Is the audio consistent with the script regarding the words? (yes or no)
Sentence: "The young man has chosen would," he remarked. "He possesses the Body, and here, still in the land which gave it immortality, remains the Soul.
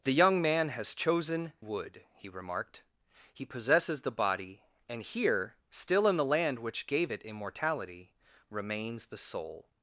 yes